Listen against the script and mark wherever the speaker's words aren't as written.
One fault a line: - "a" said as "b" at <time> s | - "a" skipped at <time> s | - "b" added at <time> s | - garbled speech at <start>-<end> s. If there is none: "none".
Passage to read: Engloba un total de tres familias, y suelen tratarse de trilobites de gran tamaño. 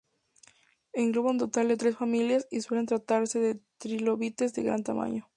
none